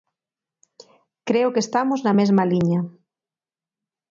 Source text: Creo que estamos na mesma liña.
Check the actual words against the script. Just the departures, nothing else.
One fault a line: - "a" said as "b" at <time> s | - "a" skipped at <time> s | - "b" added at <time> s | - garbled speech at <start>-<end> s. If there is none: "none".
none